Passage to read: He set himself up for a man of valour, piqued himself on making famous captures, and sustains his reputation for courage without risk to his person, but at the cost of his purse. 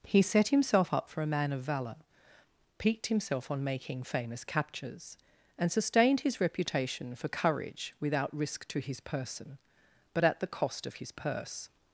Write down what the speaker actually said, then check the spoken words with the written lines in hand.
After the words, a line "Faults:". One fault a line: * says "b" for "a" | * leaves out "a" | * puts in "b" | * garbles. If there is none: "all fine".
He set himself up for a man of valour, piqued himself on making famous captures, and sustained his reputation for courage without risk to his person, but at the cost of his purse.
Faults:
* says "sustained" for "sustains"